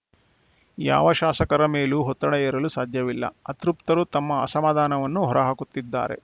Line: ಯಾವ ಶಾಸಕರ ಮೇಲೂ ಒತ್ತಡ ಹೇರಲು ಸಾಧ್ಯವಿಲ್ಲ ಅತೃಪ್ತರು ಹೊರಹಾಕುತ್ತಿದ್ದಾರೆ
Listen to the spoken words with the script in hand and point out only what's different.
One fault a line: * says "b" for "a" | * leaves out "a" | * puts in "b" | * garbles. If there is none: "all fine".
* puts in "ತಮ್ಮ ಅಸಮಾಧಾನವನ್ನು"